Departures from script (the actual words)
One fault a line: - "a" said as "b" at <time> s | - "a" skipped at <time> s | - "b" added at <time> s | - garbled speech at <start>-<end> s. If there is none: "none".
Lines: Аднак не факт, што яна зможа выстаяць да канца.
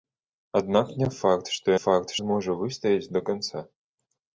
- "яна" said as "факт" at 1.8 s